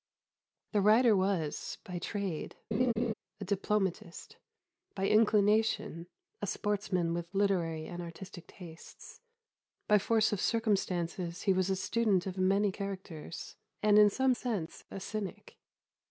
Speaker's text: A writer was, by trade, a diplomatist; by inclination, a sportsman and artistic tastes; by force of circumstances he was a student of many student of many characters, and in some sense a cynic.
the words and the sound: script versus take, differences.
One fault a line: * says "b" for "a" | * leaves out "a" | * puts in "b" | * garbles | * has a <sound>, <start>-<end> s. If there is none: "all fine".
* says "The" for "A"
* has a laugh, 2.7-3.1 s
* puts in "with literary"
* leaves out "student of many"